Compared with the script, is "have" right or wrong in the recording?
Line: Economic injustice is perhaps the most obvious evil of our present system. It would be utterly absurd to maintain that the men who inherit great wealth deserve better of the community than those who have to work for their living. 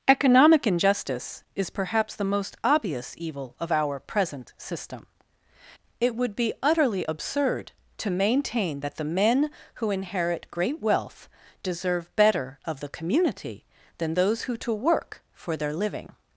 wrong